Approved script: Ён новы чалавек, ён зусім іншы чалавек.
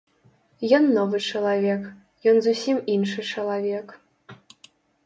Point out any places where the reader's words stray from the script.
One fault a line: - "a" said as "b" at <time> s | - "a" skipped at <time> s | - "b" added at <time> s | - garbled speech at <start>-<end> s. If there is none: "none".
none